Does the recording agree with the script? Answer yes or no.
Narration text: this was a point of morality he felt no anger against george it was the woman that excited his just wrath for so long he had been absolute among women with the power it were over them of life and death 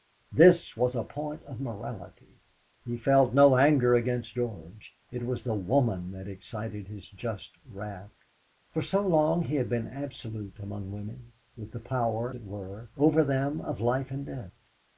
yes